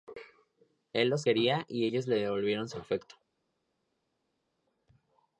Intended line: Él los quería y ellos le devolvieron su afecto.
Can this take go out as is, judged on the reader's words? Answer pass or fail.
pass